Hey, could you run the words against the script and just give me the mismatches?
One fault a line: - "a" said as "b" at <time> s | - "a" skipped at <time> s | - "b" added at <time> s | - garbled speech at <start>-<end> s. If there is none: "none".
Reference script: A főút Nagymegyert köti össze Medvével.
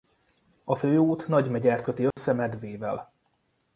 none